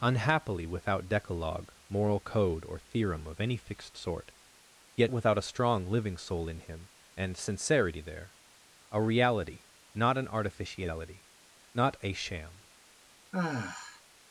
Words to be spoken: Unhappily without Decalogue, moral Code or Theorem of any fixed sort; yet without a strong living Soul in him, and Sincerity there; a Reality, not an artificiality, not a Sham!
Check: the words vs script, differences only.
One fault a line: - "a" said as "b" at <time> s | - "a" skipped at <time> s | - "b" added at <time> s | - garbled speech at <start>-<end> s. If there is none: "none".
none